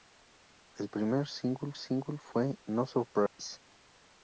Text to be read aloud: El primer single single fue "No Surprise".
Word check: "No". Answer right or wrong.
right